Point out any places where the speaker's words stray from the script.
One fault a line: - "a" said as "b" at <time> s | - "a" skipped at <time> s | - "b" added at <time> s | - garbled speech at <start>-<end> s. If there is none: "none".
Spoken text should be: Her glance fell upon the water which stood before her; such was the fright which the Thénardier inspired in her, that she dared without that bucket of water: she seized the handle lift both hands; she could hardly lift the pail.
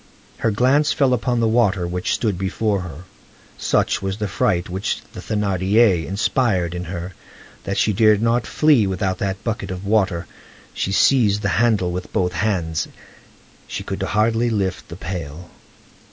- "not flee" added at 8.2 s
- "lift" said as "with" at 11.9 s